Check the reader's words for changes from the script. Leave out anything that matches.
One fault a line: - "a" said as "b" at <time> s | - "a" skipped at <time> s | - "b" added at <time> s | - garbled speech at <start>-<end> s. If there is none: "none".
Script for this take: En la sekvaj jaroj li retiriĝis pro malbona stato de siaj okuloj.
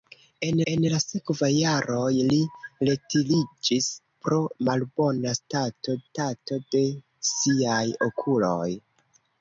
- "en" added at 0.7 s
- "stato" added at 6.1 s